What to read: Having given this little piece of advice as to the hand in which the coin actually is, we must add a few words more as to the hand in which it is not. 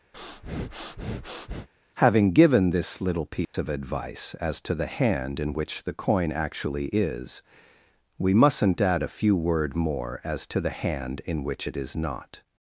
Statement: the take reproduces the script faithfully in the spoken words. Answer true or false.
false